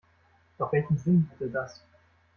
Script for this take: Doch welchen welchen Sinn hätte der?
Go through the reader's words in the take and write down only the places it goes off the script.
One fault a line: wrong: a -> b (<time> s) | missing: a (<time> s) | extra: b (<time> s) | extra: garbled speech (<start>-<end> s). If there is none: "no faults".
missing: welchen (1.0 s)
wrong: der -> das (1.5 s)